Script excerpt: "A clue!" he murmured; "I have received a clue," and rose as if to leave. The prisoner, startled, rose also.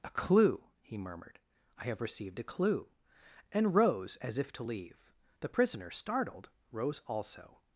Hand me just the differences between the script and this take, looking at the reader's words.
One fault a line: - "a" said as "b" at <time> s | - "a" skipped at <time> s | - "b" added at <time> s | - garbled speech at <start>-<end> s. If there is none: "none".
none